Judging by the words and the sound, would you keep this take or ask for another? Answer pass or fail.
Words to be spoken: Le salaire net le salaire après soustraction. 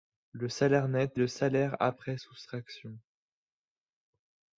pass